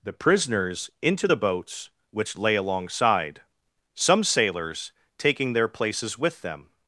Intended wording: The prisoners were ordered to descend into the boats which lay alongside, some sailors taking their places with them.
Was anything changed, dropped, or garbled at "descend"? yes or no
yes